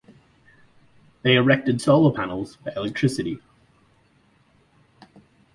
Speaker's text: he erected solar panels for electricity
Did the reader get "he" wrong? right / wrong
wrong